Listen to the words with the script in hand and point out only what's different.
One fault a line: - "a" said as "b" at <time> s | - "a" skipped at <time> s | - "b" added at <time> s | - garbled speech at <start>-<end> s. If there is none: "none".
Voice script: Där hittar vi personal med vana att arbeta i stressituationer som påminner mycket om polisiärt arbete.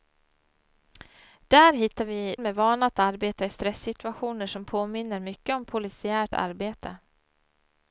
- "personal" skipped at 2.4 s